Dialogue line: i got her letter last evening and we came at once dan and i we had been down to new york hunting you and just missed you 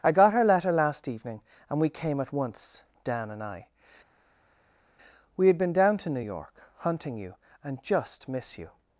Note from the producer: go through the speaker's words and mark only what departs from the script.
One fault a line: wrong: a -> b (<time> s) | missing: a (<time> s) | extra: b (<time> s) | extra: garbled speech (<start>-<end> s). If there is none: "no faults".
wrong: missed -> miss (8.3 s)